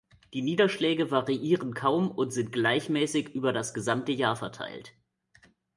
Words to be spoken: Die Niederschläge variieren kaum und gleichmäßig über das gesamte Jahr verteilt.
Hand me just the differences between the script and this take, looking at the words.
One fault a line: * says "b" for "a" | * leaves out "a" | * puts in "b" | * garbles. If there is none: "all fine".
* puts in "sind"